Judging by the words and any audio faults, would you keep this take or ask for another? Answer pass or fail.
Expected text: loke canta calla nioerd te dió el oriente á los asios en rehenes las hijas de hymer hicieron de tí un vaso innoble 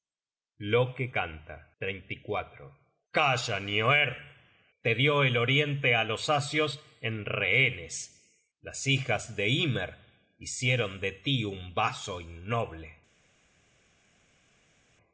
pass